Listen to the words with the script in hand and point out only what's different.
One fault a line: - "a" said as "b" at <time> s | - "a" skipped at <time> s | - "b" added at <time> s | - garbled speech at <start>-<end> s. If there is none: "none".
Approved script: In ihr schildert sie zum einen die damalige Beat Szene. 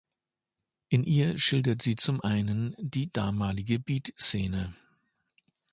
none